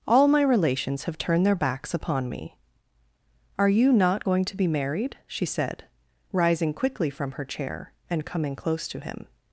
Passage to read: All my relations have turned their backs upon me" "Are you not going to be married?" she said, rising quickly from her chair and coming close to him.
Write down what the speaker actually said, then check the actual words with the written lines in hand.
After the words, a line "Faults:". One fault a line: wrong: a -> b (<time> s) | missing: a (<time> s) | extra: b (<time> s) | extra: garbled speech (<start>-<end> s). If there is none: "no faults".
All my relations have turned their backs upon me" "Are you not going to be married?" she said, rising quickly from her chair and coming close to him.
Faults:
no faults